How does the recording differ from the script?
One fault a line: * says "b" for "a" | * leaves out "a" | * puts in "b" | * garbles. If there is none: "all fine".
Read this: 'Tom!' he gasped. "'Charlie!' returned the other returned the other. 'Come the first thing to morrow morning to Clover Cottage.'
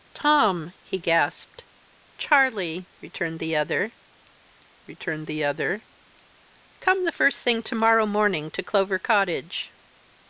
all fine